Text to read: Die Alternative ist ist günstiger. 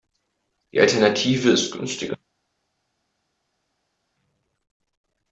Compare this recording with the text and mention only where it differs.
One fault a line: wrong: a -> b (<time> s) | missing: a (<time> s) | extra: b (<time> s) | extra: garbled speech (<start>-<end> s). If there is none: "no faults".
missing: ist (1.7 s)